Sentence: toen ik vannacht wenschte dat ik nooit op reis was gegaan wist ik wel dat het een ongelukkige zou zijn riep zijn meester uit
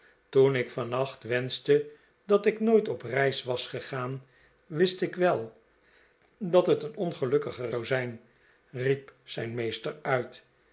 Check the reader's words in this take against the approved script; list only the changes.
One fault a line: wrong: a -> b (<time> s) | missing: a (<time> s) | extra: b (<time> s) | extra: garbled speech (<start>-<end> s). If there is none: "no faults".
no faults